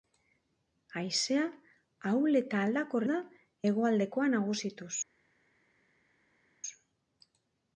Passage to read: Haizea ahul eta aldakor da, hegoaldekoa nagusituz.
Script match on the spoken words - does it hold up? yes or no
yes